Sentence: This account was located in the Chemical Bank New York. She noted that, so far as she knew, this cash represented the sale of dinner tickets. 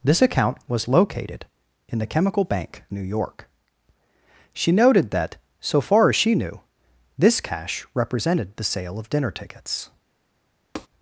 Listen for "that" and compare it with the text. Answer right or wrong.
right